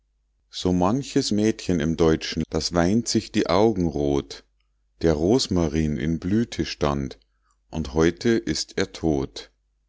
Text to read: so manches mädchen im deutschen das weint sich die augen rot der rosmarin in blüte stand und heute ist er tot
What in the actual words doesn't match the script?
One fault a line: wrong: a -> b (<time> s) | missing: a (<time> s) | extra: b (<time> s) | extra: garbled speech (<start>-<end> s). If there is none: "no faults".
no faults